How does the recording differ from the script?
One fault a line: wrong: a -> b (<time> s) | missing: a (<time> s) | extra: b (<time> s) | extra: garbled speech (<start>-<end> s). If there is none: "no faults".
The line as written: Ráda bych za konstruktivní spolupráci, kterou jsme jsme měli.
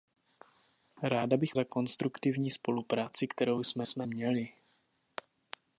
no faults